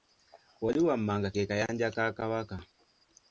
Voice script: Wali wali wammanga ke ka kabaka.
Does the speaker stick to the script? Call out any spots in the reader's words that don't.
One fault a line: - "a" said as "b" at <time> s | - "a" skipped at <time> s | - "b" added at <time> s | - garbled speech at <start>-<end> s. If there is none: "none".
- "wali" skipped at 0.8 s
- "kayanja" added at 1.5 s